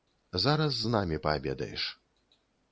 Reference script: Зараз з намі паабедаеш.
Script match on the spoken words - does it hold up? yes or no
yes